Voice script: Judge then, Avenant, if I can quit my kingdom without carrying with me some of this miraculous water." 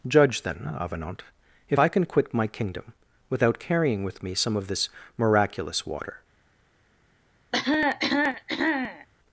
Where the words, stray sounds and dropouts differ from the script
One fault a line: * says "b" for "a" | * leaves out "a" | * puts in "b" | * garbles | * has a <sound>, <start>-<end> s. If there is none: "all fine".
* has a cough, 7.5-9.1 s